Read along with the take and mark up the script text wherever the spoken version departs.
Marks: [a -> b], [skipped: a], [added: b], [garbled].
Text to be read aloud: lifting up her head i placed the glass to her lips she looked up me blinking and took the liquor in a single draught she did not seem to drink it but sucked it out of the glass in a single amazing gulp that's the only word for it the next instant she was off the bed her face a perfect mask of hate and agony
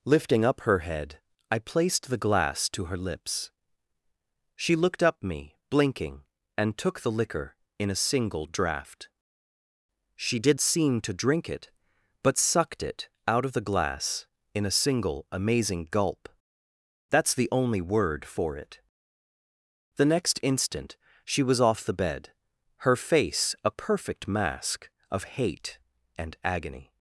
lifting up her head i placed the glass to her lips she looked up me blinking and took the liquor in a single draught she did [skipped: not] seem to drink it but sucked it out of the glass in a single amazing gulp that's the only word for it the next instant she was off the bed her face a perfect mask of hate and agony